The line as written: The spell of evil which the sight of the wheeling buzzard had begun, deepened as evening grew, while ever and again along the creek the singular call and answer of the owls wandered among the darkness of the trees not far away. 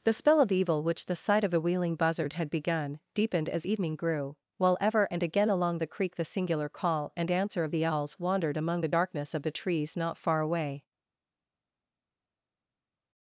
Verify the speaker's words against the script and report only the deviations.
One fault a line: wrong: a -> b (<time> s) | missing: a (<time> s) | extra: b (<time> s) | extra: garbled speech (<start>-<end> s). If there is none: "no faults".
wrong: the -> a (1.5 s)